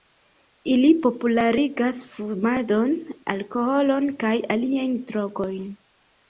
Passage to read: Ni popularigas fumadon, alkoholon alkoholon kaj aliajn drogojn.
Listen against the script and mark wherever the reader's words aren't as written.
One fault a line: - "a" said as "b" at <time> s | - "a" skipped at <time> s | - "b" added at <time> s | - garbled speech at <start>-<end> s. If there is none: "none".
- "Ni" said as "Ili" at 0.8 s
- "alkoholon" skipped at 4.1 s